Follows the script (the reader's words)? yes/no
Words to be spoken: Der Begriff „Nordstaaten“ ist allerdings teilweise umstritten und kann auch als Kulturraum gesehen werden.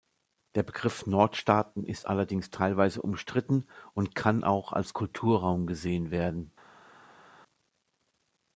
yes